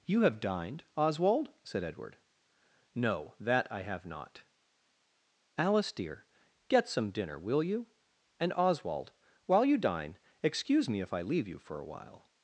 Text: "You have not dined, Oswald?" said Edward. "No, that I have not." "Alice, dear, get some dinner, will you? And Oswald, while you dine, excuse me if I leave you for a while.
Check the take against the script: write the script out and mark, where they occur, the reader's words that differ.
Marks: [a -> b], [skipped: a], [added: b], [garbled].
"You have [skipped: not] dined, Oswald?" said Edward. "No, that I have not." "Alice, dear, get some dinner, will you? And Oswald, while you dine, excuse me if I leave you for a while.